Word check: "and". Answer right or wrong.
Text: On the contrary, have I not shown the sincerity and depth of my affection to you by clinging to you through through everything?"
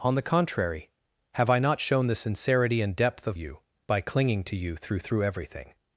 right